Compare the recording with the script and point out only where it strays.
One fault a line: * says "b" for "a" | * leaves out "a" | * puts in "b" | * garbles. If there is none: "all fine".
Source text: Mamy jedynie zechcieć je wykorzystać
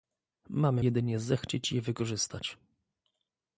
all fine